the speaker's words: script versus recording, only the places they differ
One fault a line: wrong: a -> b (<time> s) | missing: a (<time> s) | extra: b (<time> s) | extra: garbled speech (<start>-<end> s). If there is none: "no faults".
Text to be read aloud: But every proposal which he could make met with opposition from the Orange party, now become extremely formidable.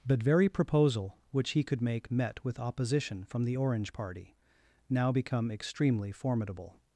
wrong: every -> very (0.2 s)